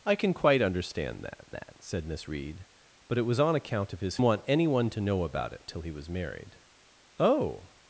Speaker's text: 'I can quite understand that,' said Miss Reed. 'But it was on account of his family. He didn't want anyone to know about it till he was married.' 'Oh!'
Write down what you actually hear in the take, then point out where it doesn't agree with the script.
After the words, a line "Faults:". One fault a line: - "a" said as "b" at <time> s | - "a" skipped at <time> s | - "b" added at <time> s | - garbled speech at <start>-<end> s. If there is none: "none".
'I can quite understand that that,' said Miss Reed. 'But it was on account of his want anyone to know about it till he was married.' 'Oh!'
Faults:
- "that" added at 1.5 s
- "family He didn't" skipped at 4.2 s